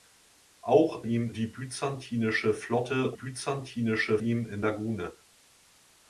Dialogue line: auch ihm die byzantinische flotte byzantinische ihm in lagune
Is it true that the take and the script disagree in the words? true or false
false